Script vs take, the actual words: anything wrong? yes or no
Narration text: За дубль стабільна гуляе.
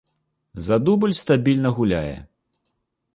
no